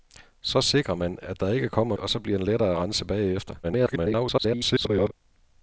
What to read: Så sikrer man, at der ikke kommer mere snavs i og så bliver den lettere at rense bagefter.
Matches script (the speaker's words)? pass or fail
fail